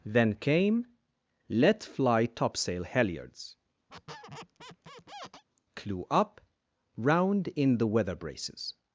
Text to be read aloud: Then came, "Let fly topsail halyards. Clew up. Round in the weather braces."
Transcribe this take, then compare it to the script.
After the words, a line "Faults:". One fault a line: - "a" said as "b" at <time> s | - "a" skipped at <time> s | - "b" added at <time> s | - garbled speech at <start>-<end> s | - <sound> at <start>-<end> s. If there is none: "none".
Then came, "Let fly topsail halyards. Clew up. Round in the weather braces."
Faults:
- squeak at 3.9-5.4 s